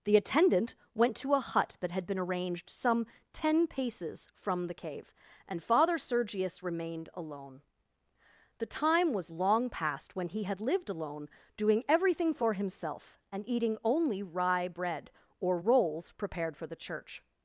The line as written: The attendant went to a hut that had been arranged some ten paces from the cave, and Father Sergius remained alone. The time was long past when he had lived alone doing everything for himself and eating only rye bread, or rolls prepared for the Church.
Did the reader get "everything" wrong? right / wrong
right